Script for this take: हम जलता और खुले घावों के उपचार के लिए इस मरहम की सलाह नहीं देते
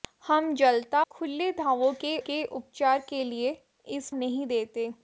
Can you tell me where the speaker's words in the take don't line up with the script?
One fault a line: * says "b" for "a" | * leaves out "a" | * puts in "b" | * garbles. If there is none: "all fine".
* leaves out "और"
* puts in "के"
* leaves out "मरहम की सलाह"